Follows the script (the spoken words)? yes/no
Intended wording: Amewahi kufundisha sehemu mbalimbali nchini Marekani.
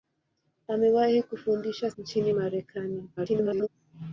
no